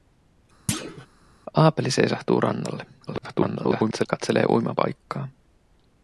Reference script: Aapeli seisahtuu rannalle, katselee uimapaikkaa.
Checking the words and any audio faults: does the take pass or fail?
fail